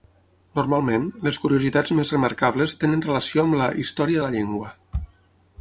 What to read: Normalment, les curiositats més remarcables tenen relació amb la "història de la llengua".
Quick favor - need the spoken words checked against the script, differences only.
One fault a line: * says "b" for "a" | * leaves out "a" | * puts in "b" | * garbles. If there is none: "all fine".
all fine